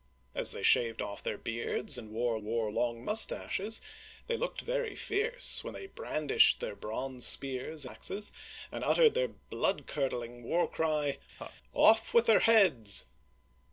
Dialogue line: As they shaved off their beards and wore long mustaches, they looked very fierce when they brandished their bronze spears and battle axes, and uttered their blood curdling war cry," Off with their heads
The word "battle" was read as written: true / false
false